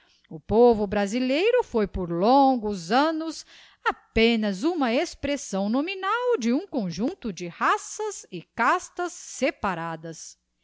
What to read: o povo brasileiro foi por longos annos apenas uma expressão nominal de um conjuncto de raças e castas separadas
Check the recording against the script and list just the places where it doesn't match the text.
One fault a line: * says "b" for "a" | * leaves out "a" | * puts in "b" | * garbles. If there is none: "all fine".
all fine